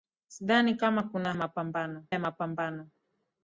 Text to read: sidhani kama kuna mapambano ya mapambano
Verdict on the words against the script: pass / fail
pass